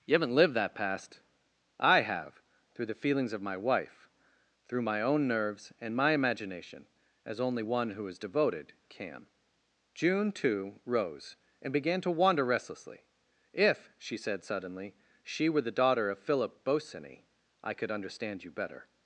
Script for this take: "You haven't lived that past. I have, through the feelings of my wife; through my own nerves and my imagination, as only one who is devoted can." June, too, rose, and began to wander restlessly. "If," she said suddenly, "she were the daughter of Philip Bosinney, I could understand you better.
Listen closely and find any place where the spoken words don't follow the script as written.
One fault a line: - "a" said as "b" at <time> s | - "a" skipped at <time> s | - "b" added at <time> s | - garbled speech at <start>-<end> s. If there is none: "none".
none